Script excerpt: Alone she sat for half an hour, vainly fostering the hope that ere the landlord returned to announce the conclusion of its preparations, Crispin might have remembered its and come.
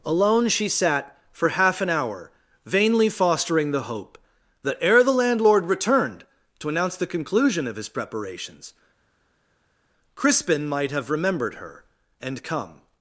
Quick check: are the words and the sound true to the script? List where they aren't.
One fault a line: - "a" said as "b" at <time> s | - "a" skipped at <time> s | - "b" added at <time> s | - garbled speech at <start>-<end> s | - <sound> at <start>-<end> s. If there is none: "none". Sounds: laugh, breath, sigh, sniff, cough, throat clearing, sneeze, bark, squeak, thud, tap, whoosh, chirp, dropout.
- "its" said as "his" at 7.8 s
- "its" said as "her" at 11.6 s